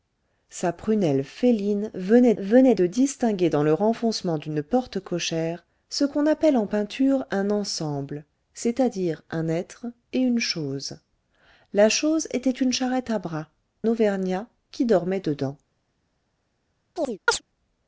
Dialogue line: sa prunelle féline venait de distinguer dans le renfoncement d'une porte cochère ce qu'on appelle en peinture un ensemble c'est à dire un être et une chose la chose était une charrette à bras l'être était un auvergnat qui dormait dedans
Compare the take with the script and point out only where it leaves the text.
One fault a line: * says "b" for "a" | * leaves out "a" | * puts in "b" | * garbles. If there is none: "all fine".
* puts in "venait"
* leaves out "l'être était un"